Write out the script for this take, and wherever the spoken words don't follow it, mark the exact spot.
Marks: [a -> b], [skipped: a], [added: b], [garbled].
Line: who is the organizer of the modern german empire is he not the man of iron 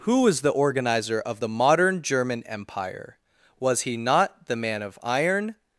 who [is -> was] the organizer of the modern german empire [is -> was] he not the man of iron